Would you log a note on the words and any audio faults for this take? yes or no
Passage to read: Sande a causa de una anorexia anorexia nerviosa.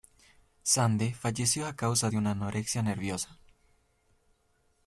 yes